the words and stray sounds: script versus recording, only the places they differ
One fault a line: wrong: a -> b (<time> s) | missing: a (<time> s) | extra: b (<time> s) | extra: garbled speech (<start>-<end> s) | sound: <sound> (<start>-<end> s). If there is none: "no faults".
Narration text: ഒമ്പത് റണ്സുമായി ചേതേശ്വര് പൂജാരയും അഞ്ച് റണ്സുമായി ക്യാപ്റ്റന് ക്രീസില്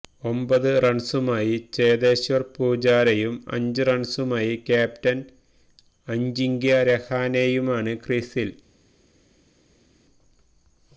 extra: അജിങ്ക്യ രഹാനെയുമാണ് (6.1 s)